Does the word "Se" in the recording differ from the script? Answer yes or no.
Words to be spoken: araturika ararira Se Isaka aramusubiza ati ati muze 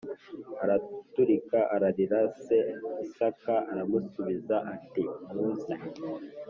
no